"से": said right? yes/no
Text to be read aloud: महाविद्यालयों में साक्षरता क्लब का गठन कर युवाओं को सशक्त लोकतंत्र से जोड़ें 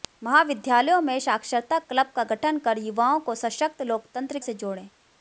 yes